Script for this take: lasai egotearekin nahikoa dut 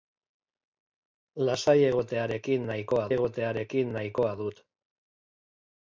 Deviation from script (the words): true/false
true